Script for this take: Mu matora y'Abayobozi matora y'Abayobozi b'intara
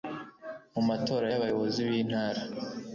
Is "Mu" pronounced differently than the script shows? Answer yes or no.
no